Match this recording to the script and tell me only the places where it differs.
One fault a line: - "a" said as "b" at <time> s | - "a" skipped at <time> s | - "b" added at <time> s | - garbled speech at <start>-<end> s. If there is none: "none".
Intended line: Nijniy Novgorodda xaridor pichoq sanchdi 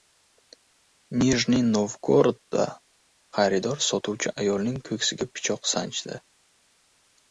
- "sotuvchi ayolning ko‘ksiga" added at 3.9 s